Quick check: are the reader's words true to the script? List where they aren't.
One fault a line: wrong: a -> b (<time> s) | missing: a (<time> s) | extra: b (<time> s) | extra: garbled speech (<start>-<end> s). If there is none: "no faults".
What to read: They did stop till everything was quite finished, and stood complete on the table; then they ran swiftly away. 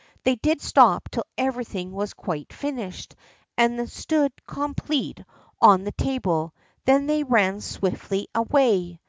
no faults